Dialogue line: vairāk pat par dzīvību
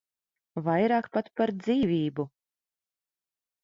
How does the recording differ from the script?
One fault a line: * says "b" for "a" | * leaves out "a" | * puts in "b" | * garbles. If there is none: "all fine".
all fine